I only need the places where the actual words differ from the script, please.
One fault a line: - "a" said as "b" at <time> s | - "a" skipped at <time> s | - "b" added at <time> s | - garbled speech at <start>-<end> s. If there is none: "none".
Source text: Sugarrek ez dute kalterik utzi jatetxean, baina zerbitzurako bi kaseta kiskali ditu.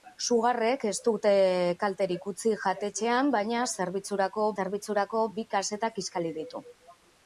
- "zerbitzurako" added at 4.6 s